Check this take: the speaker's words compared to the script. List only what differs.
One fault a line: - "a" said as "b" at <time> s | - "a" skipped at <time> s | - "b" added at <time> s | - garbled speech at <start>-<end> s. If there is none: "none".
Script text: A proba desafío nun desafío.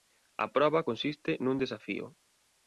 - "desafío" said as "consiste" at 0.9 s